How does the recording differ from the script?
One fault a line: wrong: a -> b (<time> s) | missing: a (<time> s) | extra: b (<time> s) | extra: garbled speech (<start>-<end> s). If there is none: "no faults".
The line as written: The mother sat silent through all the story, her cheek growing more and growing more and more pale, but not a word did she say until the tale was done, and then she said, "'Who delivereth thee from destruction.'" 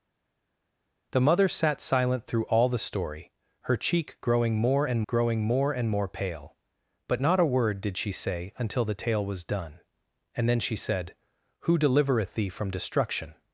no faults